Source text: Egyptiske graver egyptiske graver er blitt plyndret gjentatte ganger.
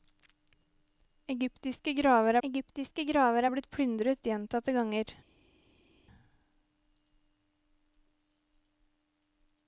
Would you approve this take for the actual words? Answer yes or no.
yes